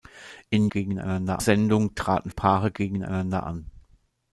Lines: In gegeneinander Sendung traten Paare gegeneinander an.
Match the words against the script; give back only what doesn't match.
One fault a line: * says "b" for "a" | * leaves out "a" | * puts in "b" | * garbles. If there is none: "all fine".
all fine